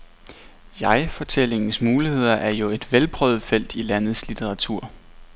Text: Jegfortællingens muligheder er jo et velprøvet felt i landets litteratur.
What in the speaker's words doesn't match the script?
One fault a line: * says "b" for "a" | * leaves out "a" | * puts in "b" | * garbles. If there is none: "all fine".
all fine